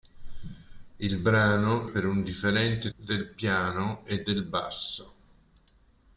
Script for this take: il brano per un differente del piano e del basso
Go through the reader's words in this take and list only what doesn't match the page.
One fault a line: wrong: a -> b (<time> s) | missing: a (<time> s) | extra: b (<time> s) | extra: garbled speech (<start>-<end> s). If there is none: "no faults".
no faults